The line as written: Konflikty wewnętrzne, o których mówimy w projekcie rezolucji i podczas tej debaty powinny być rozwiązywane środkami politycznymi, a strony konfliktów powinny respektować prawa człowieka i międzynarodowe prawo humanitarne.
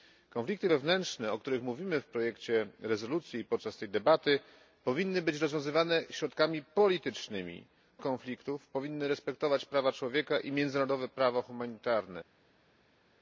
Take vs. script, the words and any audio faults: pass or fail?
fail